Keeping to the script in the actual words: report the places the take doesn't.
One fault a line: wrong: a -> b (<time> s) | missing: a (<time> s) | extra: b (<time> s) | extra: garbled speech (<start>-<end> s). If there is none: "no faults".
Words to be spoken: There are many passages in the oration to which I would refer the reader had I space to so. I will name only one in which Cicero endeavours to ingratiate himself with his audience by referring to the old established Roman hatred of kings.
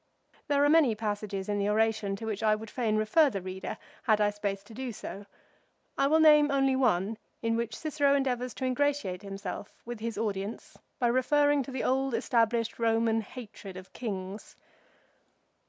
extra: fain (2.7 s)
extra: do (4.7 s)